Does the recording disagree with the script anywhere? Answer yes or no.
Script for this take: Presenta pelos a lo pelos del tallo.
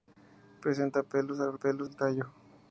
no